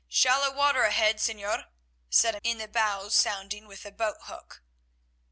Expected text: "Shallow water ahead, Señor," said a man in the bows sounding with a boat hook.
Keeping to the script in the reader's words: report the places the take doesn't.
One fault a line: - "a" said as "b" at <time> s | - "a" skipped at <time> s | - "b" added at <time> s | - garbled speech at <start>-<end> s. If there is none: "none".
- "man" skipped at 2.4 s